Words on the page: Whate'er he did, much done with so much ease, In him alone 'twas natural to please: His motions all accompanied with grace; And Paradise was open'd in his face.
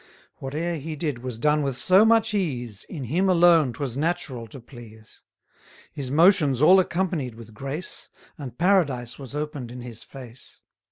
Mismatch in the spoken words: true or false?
true